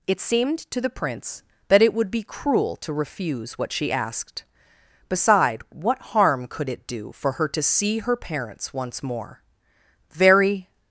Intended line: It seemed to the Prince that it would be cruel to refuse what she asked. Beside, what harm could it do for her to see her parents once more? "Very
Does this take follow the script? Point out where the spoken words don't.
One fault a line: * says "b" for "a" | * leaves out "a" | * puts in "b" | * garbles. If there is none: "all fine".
all fine